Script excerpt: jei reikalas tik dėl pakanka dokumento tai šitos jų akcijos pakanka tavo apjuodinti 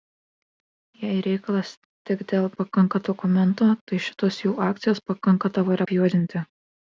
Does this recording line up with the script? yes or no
yes